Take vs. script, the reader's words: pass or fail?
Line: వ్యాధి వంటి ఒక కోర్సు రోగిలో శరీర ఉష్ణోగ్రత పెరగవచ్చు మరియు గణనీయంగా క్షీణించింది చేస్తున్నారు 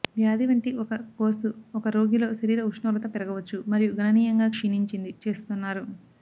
fail